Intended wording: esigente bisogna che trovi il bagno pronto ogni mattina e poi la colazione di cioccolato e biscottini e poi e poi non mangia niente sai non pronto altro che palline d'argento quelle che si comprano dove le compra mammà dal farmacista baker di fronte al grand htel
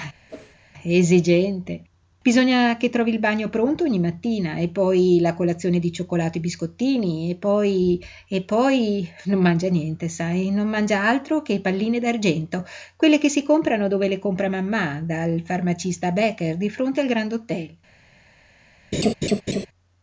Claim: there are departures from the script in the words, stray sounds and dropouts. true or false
true